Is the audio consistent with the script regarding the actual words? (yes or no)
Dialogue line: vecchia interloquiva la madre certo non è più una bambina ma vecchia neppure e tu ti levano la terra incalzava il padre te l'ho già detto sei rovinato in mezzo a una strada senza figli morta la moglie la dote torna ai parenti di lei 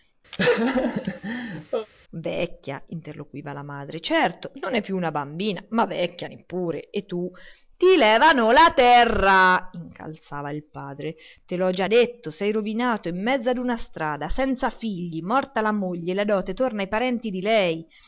yes